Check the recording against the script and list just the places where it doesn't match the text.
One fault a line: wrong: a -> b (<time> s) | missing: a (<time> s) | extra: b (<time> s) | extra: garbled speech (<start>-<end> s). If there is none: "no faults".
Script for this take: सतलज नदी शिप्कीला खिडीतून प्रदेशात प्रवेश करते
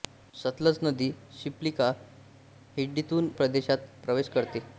no faults